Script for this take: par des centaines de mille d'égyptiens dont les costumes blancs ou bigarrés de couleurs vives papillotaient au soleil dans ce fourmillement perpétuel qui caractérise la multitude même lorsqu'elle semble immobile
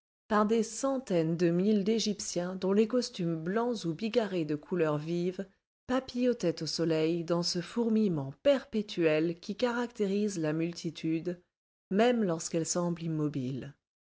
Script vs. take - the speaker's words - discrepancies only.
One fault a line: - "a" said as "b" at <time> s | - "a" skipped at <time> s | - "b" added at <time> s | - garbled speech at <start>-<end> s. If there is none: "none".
none